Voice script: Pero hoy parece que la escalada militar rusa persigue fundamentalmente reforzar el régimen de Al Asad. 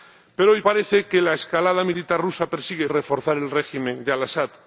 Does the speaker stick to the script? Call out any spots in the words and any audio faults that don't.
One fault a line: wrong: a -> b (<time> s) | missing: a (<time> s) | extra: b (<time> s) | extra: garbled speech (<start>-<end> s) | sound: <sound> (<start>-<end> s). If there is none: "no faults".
missing: fundamentalmente (2.9 s)